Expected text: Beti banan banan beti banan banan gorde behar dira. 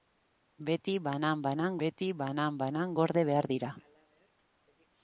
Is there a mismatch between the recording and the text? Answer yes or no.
no